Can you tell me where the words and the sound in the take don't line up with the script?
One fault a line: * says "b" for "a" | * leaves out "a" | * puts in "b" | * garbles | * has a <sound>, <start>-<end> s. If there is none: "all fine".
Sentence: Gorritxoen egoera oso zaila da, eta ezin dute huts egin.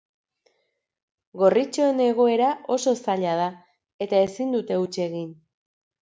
all fine